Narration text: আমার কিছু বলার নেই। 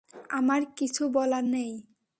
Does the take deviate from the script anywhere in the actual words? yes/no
no